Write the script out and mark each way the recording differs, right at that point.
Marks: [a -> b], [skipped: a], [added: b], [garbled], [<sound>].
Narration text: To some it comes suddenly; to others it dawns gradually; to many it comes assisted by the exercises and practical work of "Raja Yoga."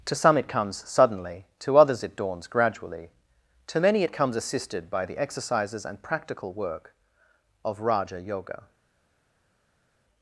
To some it comes suddenly; to others it dawns gradually; to many it comes assisted by the exercises and practical work of "Raja Yoga."